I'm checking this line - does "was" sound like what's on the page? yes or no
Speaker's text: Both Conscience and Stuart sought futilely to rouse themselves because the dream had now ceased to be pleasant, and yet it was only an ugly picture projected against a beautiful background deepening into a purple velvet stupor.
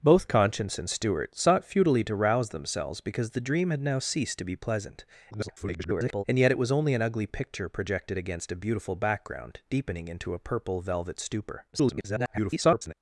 yes